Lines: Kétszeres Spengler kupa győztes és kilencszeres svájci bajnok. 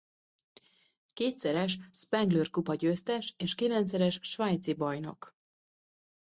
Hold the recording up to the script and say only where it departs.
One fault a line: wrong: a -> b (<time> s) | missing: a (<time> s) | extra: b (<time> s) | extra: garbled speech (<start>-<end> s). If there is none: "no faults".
no faults